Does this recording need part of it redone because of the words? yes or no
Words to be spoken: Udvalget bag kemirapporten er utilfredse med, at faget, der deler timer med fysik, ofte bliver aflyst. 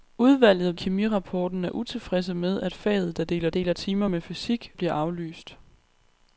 yes